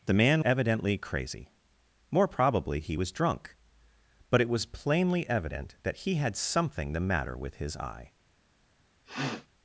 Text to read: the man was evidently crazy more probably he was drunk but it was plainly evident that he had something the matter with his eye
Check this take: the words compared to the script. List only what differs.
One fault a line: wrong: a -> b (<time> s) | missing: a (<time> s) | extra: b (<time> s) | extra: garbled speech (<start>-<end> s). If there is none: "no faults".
missing: was (0.5 s)